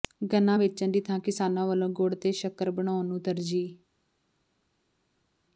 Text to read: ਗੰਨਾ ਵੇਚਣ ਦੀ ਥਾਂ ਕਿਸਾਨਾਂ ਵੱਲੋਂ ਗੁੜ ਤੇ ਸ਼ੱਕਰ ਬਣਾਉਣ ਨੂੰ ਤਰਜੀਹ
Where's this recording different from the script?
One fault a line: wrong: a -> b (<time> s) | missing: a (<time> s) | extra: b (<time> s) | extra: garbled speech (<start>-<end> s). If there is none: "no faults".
no faults